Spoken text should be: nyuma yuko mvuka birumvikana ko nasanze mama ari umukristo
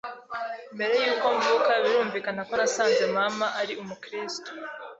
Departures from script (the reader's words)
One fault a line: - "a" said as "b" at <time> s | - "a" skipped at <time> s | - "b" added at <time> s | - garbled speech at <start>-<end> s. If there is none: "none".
- "nyuma" said as "mbere" at 0.8 s